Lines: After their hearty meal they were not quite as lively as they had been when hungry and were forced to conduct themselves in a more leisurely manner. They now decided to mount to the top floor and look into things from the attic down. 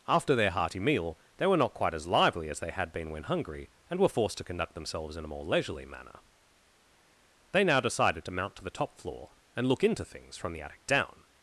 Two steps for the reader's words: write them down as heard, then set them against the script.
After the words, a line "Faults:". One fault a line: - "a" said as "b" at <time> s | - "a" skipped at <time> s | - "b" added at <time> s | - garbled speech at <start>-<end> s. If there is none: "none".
After their hearty meal they were not quite as lively as they had been when hungry and were forced to conduct themselves in a more leisurely manner. They now decided to mount to the top floor and look into things from the attic down.
Faults:
none